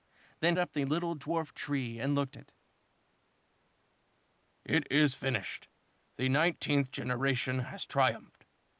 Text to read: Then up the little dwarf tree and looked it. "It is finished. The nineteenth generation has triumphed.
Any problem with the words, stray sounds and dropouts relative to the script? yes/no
no